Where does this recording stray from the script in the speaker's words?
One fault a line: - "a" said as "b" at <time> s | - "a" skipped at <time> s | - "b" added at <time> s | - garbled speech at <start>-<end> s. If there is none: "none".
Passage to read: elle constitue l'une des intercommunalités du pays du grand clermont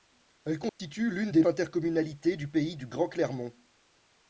none